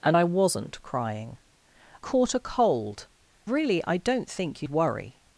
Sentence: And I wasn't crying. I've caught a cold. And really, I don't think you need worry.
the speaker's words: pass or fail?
fail